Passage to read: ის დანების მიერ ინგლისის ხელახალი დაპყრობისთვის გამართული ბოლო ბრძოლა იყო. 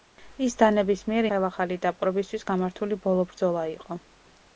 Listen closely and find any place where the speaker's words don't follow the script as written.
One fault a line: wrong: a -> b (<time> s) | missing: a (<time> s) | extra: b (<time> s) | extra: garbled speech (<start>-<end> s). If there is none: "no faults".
missing: ინგლისის (1.3 s)